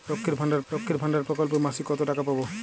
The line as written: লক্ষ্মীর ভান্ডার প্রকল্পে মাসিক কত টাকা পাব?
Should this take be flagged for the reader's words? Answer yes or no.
yes